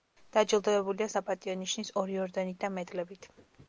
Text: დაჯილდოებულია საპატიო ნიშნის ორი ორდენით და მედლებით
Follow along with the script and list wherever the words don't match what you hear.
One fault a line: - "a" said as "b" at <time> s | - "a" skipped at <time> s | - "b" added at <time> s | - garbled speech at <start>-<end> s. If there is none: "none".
none